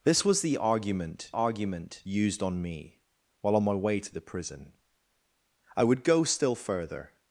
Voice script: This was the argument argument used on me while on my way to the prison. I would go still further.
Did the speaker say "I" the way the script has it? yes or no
yes